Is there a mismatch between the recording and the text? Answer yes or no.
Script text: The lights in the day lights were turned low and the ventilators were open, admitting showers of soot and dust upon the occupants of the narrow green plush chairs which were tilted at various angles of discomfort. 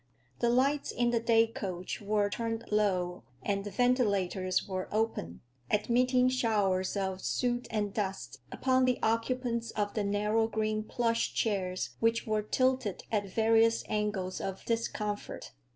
yes